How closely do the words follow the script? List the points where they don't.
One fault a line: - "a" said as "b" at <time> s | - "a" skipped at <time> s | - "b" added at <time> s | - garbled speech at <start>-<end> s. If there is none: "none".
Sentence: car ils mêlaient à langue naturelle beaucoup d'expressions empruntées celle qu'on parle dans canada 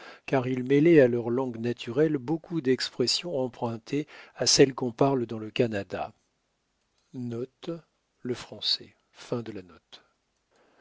- "leur" added at 1.1 s
- "à" added at 4.3 s
- "le" added at 5.4 s